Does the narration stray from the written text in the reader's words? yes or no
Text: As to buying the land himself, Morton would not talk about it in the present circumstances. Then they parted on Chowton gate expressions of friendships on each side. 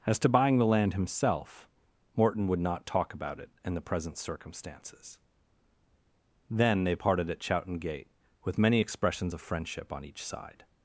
yes